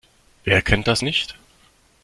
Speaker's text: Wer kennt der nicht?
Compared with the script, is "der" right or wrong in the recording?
wrong